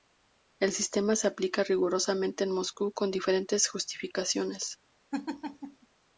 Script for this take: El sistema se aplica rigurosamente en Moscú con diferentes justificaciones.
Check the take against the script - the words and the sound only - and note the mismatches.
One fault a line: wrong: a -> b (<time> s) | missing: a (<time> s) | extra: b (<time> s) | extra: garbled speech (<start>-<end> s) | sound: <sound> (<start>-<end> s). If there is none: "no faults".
sound: laugh (5.1-5.9 s)